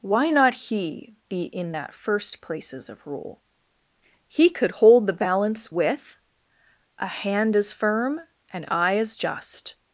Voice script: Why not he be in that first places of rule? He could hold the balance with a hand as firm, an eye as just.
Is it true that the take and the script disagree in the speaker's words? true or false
false